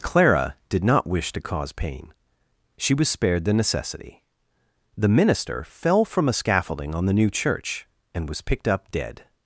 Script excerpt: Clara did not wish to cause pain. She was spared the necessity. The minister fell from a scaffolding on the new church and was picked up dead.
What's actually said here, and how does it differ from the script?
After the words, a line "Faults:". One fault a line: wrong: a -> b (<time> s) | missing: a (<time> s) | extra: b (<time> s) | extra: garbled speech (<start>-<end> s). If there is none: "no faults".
Clara did not wish to cause pain. She was spared the necessity. The minister fell from a scaffolding on the new church and was picked up dead.
Faults:
no faults